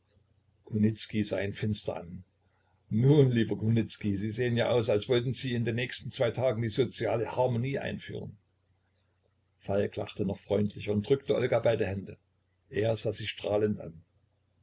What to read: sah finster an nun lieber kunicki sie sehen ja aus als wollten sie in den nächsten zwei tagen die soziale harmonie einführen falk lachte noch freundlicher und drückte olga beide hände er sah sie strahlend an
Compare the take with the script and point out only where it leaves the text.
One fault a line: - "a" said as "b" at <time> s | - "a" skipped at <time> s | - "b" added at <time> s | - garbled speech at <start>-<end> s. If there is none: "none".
- "ihn" added at 1.4 s